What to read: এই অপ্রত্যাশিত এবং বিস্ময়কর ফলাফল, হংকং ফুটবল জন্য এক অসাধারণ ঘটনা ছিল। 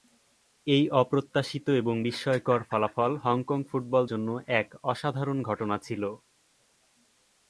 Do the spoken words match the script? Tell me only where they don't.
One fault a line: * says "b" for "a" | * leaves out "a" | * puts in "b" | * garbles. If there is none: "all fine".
all fine